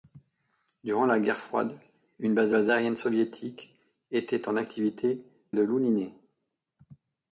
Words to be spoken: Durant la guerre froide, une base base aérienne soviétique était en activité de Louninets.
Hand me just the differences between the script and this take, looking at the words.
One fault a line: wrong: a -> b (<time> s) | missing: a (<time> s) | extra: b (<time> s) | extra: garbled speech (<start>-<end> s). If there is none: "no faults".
no faults